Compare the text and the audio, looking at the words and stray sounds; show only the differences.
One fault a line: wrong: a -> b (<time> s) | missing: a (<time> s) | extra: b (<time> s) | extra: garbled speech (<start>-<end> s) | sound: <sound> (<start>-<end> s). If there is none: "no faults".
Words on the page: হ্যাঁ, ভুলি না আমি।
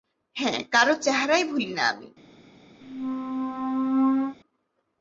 extra: কারো চেহারাই (0.7 s)
sound: squeak (2.8-4.4 s)